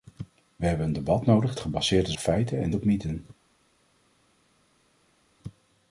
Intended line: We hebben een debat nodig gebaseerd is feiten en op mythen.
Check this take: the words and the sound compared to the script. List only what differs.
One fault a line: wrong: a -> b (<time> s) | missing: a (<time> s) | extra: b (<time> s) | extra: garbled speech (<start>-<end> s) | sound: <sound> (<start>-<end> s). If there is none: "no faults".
no faults